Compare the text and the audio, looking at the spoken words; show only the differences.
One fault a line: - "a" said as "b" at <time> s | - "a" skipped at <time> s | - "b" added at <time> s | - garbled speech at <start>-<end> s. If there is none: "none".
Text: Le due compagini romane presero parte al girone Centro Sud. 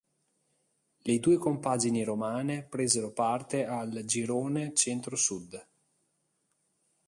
none